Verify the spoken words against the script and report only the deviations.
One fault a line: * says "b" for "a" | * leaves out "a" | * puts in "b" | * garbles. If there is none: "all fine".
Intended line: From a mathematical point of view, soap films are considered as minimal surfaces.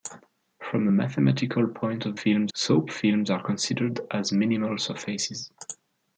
* says "films" for "view"